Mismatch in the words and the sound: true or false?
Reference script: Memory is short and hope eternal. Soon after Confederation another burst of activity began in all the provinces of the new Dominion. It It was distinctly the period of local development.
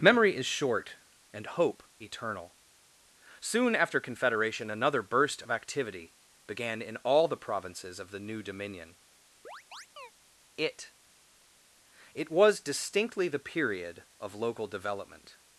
true